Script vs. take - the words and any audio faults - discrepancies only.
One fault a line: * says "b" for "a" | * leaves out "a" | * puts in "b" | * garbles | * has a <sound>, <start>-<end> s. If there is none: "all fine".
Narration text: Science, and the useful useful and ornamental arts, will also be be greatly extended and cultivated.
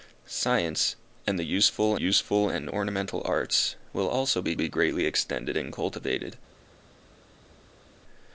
all fine